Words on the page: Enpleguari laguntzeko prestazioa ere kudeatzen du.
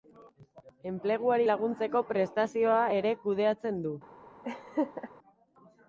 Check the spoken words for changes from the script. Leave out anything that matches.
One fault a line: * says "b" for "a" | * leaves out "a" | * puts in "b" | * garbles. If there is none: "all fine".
all fine